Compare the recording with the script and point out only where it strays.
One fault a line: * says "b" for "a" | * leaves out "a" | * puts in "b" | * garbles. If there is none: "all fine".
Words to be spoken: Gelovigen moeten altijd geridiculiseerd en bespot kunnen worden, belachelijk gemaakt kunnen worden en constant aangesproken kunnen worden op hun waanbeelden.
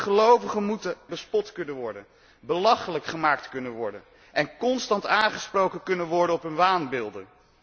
* leaves out "altijd geridiculiseerd en"